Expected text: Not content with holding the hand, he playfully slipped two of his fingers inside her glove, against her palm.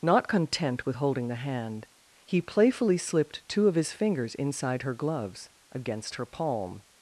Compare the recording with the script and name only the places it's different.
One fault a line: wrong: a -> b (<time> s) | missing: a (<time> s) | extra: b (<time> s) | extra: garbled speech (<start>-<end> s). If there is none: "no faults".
wrong: glove -> gloves (4.9 s)